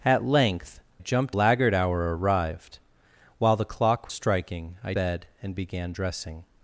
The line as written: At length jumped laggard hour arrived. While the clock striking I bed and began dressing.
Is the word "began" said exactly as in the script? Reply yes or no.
yes